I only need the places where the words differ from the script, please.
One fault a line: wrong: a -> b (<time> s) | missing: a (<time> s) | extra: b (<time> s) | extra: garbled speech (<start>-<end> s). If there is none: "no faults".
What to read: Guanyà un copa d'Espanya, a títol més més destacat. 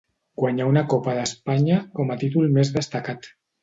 wrong: un -> una (0.7 s)
extra: com (2.0 s)
missing: més (2.8 s)